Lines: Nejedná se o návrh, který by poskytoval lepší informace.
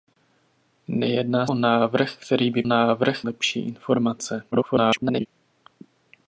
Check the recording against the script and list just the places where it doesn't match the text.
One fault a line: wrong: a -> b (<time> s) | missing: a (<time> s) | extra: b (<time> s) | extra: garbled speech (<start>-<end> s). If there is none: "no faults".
missing: se (1.5 s)
wrong: poskytoval -> návrh (2.6 s)
extra: garbled speech (4.5-5.3 s)